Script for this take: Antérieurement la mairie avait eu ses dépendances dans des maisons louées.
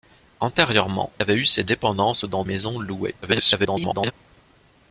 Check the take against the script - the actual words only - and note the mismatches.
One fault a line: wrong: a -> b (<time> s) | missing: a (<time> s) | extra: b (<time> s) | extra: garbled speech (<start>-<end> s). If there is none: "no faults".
missing: la mairie (1.1 s)
missing: des (2.4 s)
extra: garbled speech (3.2-4.1 s)